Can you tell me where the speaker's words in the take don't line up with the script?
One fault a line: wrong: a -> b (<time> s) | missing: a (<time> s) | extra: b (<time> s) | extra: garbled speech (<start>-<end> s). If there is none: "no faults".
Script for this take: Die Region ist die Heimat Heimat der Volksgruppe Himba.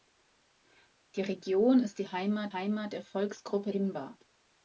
no faults